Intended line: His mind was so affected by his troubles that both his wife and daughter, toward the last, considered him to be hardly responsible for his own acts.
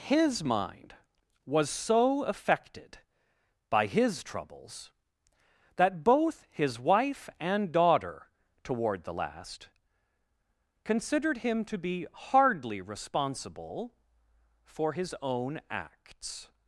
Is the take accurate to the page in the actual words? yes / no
yes